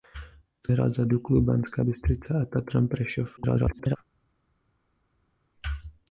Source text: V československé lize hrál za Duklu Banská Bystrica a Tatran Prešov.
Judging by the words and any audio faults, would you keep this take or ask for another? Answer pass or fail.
fail